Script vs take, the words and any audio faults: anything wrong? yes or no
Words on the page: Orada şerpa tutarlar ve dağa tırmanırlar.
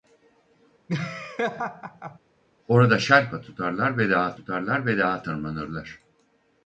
yes